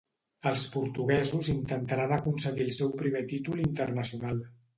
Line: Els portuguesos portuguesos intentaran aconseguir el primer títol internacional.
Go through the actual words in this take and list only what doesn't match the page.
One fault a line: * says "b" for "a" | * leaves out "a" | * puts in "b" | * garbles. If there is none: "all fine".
* leaves out "portuguesos"
* puts in "seu"